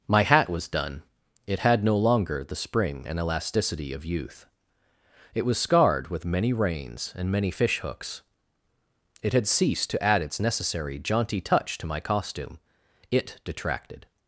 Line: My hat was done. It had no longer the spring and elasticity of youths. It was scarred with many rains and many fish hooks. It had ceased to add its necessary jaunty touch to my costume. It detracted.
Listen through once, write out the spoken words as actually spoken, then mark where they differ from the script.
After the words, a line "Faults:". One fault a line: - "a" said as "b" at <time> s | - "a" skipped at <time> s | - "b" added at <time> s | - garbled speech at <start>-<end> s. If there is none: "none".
My hat was done. It had no longer the spring and elasticity of youth. It was scarred with many rains and many fish hooks. It had ceased to add its necessary jaunty touch to my costume. It detracted.
Faults:
- "youths" said as "youth" at 4.0 s